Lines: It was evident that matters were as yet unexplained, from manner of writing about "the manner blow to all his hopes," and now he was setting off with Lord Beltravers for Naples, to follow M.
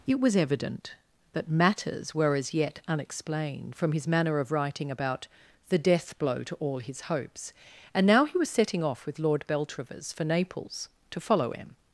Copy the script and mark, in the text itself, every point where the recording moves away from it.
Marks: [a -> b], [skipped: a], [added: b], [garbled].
It was evident that matters were as yet unexplained, from [added: his] manner of writing about "the [manner -> death] blow to all his hopes," and now he was setting off with Lord Beltravers for Naples, to follow M.